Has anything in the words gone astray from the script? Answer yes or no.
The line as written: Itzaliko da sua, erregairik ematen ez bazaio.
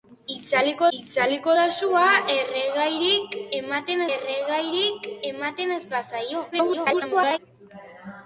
yes